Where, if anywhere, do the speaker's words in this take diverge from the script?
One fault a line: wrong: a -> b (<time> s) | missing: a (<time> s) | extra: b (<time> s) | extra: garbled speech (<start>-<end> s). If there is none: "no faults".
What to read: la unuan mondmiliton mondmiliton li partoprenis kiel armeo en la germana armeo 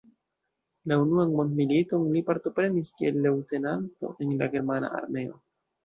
missing: mondmiliton (2.1 s)
wrong: armeo -> leŭtenanto (3.3 s)